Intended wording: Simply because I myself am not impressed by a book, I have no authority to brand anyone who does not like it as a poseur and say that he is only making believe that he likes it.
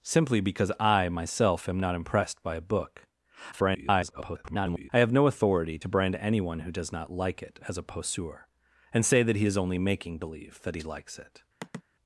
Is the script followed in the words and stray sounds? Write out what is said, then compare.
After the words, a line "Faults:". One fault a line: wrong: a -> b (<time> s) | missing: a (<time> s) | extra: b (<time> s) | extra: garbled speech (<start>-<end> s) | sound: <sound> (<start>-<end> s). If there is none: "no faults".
Simply because I myself am not impressed by a book, [garbled] I have no authority to brand anyone who does not like it as a poseur and say that he is only making believe that he likes it.
Faults:
extra: garbled speech (3.5-4.9 s)
sound: sigh (11.6-11.8 s)